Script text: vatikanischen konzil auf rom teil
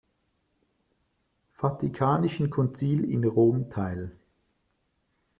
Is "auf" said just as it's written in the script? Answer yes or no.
no